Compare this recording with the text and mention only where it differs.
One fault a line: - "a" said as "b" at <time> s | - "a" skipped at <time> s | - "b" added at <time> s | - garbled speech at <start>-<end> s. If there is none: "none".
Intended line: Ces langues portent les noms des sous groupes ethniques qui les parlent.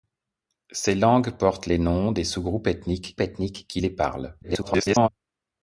- "ethniques" added at 3.2 s
- garbled speech at 4.4-5.1 s